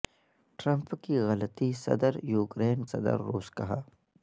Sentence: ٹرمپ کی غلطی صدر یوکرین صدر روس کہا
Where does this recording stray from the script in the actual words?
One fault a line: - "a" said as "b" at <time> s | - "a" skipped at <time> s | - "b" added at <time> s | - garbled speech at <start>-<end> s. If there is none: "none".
none